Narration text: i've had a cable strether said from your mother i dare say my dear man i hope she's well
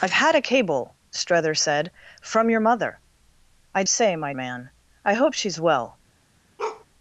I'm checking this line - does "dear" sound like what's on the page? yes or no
no